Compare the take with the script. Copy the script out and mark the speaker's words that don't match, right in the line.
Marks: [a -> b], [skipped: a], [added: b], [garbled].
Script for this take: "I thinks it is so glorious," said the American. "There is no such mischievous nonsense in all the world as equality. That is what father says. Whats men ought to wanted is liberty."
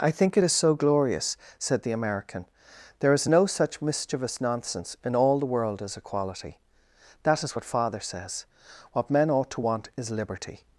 "I [thinks -> think] it is so glorious," said the American. "There is no such mischievous nonsense in all the world as equality. That is what father says. [Whats -> What] men ought to [wanted -> want] is liberty."